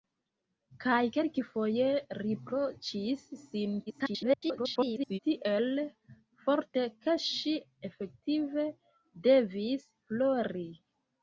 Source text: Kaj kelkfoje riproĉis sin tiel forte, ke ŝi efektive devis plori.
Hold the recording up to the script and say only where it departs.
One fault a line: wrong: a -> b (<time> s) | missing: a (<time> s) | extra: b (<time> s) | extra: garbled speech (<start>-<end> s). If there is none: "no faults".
extra: garbled speech (3.9-5.2 s)